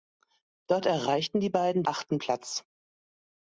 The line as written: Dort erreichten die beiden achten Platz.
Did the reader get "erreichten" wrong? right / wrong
right